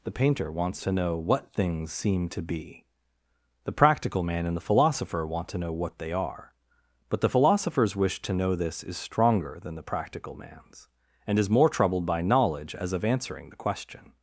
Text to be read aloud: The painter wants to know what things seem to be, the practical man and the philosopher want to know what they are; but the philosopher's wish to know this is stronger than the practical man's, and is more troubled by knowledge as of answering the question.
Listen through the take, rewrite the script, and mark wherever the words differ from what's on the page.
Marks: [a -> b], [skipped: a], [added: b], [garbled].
The painter wants to know what things seem to be, the practical man and the philosopher want to know what they are; but the philosopher's wish to know this is stronger than the practical man's, and is more troubled by knowledge as of answering the question.